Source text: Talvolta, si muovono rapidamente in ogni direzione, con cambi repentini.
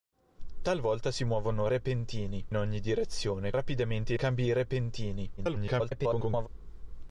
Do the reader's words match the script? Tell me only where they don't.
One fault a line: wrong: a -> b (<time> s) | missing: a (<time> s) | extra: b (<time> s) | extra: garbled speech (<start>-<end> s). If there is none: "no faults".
wrong: rapidamente -> repentini (1.7 s)
wrong: con -> rapidamente (3.5 s)
extra: garbled speech (5.4-6.5 s)